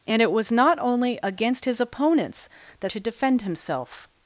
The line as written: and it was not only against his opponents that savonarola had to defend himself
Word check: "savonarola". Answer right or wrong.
wrong